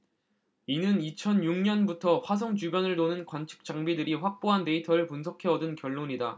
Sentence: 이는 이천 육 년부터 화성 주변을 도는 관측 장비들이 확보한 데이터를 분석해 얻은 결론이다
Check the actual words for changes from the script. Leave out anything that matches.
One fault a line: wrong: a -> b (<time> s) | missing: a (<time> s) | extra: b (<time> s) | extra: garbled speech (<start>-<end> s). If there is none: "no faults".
no faults